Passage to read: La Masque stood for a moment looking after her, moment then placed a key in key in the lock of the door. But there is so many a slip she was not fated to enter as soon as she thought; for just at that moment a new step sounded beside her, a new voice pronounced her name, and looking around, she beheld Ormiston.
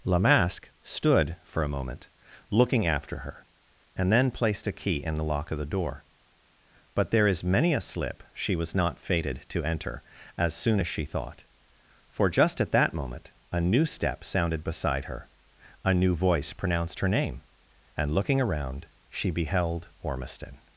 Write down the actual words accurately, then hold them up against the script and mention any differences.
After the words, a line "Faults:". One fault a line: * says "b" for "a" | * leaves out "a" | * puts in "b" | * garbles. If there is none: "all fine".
La Masque stood for a moment looking after her, and then placed a key in the lock of the door. But there is many a slip she was not fated to enter as soon as she thought; for just at that moment a new step sounded beside her, a new voice pronounced her name, and looking around, she beheld Ormiston.
Faults:
* says "and" for "moment"
* leaves out "key in"
* leaves out "so"